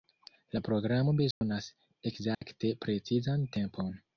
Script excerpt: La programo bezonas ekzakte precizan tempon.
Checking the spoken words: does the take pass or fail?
pass